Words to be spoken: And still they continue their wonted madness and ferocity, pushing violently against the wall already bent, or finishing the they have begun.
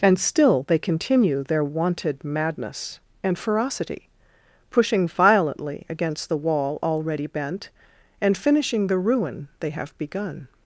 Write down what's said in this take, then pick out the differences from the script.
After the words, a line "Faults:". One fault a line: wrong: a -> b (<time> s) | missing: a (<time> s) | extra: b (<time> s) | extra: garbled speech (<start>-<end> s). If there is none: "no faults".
And still they continue their wonted madness and ferocity, pushing violently against the wall already bent, and finishing the ruin they have begun.
Faults:
wrong: or -> and (8.2 s)
extra: ruin (9.0 s)